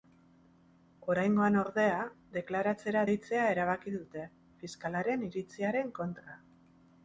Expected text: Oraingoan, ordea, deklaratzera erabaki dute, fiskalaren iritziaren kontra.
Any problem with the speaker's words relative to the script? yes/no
yes